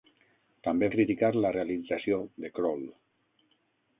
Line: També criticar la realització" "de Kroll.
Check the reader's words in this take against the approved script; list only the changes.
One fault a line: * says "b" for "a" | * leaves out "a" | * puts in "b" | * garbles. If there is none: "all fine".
all fine